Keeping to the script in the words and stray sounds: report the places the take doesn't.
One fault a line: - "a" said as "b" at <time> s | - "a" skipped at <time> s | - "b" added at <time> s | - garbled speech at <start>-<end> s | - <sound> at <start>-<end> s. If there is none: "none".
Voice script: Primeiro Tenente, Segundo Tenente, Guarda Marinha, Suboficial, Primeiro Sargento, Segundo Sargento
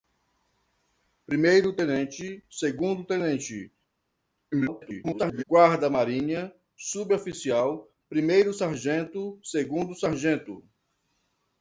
- garbled speech at 4.5-5.4 s